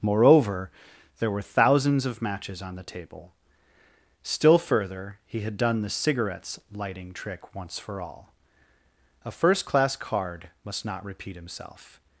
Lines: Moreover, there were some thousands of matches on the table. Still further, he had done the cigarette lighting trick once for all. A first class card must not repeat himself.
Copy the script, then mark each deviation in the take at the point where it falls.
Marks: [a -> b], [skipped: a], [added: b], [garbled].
Moreover, there were [skipped: some] thousands of matches on the table. Still further, he had done the [cigarette -> cigarettes] lighting trick once for all. A first class card must not repeat himself.